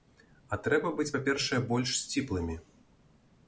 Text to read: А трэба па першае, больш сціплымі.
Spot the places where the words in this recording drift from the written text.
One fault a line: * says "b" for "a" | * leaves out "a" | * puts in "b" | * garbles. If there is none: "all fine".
* puts in "быць"